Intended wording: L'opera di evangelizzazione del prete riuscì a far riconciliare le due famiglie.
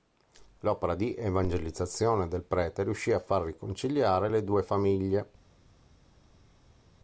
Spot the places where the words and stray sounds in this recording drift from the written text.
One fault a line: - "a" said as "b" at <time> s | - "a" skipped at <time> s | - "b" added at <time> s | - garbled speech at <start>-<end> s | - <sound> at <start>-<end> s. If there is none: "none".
none